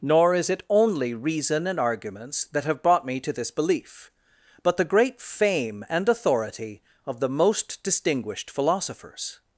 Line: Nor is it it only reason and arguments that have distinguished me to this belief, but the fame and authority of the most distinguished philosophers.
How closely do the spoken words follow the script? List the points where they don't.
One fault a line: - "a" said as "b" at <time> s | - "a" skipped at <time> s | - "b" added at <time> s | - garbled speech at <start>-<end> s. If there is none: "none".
- "it" skipped at 0.6 s
- "distinguished" said as "brought" at 2.8 s
- "great" added at 4.8 s